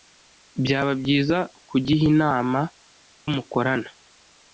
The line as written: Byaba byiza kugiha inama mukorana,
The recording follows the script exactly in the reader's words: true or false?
true